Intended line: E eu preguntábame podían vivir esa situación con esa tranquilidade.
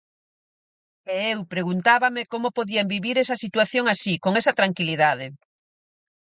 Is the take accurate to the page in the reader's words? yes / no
no